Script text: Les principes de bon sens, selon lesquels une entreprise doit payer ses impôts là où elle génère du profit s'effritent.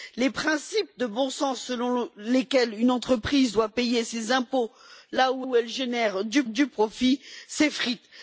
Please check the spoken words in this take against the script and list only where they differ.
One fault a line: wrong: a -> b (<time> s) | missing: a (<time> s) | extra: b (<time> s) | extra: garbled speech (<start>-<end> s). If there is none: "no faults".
extra: où (5.4 s)
extra: du (6.5 s)